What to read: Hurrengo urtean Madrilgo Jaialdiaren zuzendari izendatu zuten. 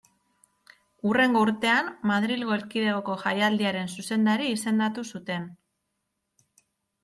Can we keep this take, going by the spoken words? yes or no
no